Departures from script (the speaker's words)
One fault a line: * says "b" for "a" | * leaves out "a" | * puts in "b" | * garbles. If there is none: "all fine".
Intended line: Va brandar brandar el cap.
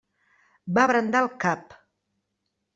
* leaves out "brandar"